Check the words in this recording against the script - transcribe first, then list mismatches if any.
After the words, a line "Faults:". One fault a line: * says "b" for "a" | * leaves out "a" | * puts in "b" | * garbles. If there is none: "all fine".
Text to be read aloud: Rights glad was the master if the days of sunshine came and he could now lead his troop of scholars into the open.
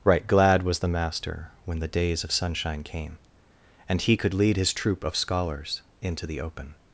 Right glad was the master when the days of sunshine came and he could lead his troop of scholars into the open.
Faults:
* says "Right" for "Rights"
* says "when" for "if"
* leaves out "now"